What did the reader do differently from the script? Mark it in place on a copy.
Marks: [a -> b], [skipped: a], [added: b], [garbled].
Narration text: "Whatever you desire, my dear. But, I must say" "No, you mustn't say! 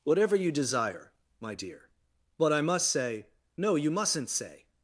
"Whatever you desire, my dear. But, I must say" "No, you mustn't say!